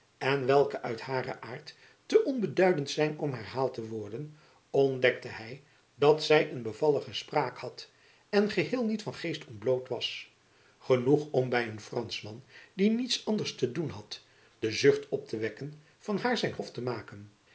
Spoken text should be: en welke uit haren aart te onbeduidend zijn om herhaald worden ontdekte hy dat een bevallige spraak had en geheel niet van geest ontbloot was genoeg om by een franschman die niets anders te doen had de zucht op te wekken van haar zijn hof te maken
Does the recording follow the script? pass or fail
fail